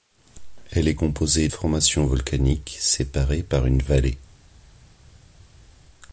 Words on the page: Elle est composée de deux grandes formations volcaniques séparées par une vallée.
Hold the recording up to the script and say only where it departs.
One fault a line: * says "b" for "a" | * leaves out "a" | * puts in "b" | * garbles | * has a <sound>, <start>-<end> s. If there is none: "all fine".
* leaves out "de deux grandes"